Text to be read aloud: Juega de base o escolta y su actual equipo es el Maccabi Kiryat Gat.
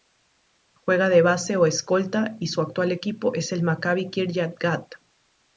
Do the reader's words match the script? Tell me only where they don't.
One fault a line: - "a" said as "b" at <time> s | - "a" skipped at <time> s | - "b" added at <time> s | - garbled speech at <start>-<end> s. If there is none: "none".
none